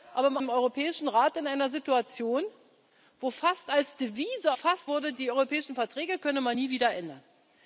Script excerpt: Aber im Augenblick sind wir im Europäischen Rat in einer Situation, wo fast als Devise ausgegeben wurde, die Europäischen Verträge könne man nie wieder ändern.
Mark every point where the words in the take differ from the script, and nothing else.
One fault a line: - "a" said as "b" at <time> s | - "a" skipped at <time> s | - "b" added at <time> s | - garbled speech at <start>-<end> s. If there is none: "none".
- "Augenblick sind wir" skipped at 0.4 s
- "ausgegeben" said as "fast" at 4.5 s